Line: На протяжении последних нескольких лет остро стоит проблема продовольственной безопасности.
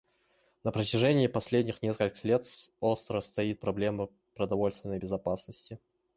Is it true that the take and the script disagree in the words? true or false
false